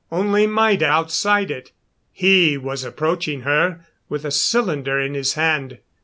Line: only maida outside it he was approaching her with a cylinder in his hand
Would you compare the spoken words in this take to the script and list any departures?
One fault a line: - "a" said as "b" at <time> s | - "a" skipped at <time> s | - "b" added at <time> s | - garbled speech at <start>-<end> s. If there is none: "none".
none